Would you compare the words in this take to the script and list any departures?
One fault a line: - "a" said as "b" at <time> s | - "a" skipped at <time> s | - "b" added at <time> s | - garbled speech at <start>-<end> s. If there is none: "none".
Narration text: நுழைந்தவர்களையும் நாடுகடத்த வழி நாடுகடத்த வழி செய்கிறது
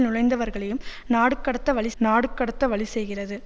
none